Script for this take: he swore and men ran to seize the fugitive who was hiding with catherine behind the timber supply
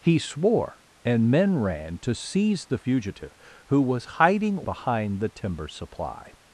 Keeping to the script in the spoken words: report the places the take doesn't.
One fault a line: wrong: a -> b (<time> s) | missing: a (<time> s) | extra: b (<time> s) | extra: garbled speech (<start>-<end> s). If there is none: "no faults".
missing: with catherine (4.7 s)